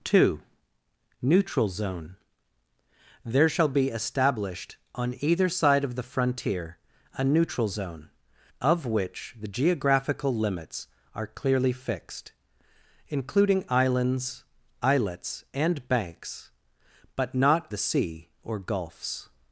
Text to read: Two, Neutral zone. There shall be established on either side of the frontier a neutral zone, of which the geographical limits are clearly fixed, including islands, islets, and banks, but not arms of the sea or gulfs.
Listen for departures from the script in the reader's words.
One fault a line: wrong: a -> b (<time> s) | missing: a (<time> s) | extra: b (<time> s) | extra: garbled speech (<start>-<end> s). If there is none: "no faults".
missing: arms of (17.7 s)